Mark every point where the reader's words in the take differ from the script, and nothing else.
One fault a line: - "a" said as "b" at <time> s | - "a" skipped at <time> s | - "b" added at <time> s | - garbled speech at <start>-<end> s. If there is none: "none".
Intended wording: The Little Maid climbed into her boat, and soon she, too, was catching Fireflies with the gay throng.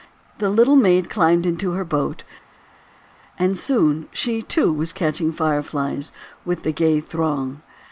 none